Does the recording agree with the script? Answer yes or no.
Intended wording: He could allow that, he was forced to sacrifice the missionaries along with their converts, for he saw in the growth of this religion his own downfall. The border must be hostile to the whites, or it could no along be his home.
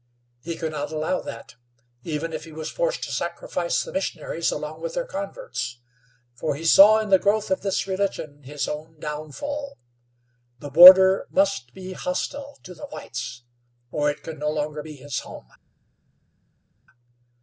no